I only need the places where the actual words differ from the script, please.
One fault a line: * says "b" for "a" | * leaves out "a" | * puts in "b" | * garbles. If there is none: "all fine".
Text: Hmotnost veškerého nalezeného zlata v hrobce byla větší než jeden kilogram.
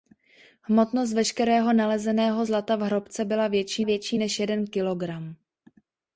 * puts in "větší"